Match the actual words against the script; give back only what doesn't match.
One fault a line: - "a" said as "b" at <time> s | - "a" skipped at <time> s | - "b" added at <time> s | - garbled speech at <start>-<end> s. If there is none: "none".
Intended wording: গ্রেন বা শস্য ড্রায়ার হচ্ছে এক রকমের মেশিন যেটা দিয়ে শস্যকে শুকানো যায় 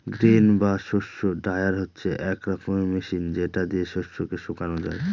none